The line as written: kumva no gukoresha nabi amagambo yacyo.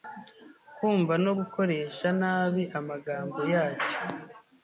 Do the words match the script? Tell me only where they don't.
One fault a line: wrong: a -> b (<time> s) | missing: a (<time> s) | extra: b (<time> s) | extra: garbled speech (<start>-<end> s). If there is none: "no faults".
no faults